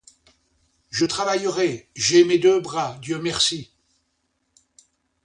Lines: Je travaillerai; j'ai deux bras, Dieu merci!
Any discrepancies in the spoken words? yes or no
yes